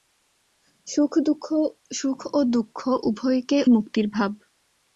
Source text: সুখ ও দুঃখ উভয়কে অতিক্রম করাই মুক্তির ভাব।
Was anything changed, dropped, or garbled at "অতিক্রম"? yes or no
yes